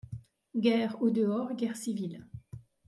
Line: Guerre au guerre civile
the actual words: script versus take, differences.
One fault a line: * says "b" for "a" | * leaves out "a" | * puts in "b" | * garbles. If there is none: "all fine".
* puts in "dehors"